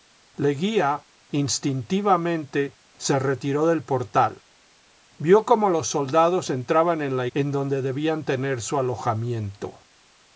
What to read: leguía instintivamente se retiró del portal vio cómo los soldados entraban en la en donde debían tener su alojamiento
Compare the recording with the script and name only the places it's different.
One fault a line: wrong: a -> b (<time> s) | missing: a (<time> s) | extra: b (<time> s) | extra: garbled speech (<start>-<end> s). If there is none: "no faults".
no faults